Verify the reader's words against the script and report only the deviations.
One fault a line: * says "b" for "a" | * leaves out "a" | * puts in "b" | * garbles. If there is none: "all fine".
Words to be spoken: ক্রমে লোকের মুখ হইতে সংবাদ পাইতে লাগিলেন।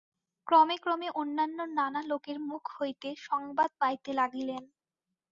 * puts in "ক্রমে অন্যান্য নানা"